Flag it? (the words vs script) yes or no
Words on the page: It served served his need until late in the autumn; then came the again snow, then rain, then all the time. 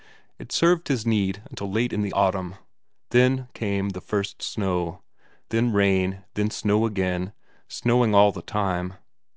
yes